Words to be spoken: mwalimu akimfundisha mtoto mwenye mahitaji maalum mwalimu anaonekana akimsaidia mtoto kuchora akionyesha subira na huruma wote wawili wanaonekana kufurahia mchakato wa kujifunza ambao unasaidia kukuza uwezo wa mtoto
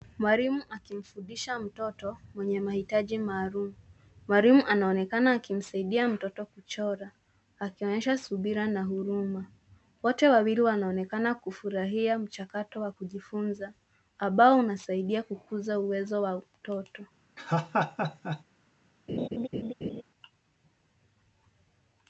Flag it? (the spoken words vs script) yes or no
no